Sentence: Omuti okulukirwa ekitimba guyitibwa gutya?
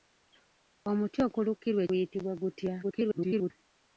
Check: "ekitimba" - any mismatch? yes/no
yes